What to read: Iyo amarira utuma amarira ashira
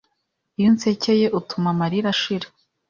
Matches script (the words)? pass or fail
fail